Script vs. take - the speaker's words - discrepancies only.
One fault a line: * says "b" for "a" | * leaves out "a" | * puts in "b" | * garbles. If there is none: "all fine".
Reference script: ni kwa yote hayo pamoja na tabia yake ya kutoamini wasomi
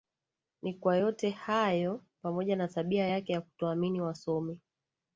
all fine